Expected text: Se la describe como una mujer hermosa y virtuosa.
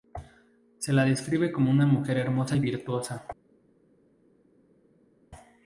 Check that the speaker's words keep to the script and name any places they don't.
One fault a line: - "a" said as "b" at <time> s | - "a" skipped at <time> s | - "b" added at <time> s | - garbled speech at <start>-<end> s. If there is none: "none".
none